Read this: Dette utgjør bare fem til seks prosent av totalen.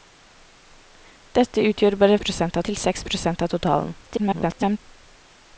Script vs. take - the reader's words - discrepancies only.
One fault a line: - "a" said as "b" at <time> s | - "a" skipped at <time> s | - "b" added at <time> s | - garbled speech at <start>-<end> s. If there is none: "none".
- "fem" said as "prosent" at 2.2 s
- garbled speech at 4.0-4.8 s